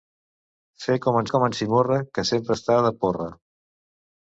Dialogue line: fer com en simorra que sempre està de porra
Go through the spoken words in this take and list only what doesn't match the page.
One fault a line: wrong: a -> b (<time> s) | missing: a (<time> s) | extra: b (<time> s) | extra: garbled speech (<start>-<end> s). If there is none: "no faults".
extra: com en (1.3 s)